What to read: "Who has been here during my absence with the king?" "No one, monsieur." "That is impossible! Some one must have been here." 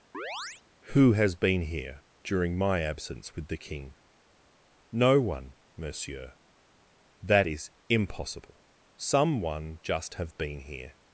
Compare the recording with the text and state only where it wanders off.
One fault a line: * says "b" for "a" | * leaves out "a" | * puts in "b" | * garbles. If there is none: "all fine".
* says "just" for "must"